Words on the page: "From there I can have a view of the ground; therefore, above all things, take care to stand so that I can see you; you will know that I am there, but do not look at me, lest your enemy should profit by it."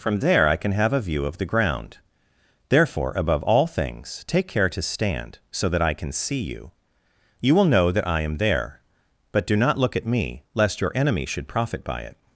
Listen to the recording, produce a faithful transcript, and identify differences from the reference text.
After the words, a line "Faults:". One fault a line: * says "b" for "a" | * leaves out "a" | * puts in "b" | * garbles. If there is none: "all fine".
"From there I can have a view of the ground; therefore, above all things, take care to stand so that I can see you; you will know that I am there, but do not look at me, lest your enemy should profit by it."
Faults:
all fine